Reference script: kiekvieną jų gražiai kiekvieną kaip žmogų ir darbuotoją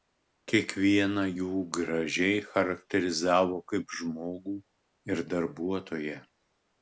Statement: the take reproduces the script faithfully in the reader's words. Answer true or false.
false